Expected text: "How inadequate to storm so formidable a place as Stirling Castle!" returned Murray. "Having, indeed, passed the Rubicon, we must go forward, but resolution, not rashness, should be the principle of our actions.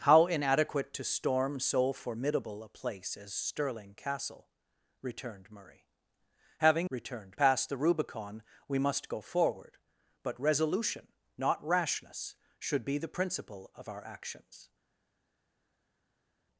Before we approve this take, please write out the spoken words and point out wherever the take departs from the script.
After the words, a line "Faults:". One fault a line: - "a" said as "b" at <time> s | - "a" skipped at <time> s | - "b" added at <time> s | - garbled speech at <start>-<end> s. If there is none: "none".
"How inadequate to storm so formidable a place as Stirling Castle!" returned Murray. "Having, returned, passed the Rubicon, we must go forward, but resolution, not rashness, should be the principle of our actions.
Faults:
- "indeed" said as "returned" at 6.9 s